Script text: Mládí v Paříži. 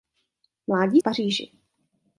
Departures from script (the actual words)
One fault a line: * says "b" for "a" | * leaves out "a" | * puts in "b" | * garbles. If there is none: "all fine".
all fine